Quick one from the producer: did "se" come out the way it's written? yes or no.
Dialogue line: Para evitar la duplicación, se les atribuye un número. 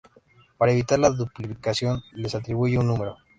no